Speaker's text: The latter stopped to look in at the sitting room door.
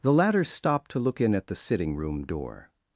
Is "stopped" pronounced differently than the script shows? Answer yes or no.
no